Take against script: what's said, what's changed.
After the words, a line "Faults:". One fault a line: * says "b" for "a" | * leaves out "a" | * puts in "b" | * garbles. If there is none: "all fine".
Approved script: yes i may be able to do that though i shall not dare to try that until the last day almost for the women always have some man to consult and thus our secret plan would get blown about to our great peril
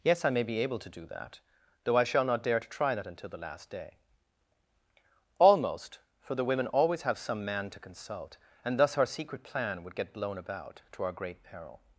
yes i may be able to do that though i shall not dare to try that until the last day almost for the women always have some man to consult and thus our secret plan would get blown about to our great peril
Faults:
all fine